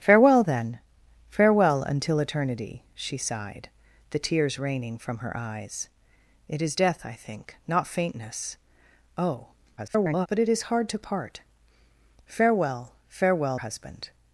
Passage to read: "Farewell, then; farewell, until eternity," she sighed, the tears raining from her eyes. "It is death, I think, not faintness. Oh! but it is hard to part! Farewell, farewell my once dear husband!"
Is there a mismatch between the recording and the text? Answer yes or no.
yes